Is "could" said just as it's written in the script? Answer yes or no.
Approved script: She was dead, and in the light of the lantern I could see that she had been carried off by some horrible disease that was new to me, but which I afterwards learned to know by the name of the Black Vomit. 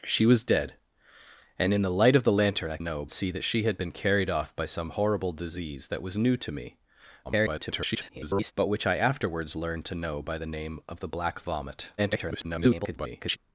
no